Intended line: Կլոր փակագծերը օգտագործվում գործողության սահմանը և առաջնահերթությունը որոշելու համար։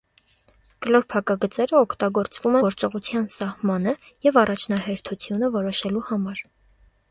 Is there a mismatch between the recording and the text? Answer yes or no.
no